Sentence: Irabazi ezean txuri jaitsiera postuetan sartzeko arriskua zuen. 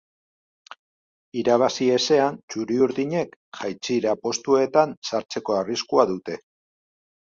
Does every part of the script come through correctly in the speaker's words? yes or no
no